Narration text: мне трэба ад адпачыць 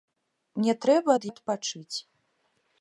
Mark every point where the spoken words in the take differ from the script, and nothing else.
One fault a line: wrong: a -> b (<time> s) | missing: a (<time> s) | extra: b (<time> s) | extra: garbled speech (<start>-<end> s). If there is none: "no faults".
no faults